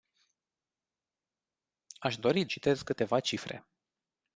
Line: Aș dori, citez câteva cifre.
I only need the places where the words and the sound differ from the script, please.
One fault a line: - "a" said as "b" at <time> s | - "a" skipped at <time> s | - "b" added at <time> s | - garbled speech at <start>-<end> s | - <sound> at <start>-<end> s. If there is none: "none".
none